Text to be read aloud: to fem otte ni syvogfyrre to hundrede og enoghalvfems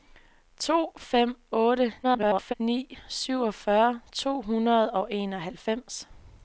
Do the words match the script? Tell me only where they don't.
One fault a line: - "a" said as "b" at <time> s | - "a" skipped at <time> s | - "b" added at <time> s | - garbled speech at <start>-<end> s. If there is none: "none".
- garbled speech at 2.0-2.5 s